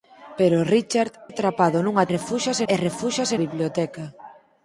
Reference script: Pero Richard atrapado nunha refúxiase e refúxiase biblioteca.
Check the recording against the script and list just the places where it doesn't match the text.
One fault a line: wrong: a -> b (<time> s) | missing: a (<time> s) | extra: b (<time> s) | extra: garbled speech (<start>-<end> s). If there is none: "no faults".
no faults